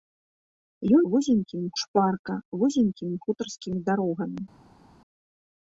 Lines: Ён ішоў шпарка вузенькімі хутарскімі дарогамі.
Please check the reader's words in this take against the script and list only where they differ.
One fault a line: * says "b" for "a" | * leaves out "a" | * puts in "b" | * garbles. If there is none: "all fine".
* says "вузенькімі" for "ішоў"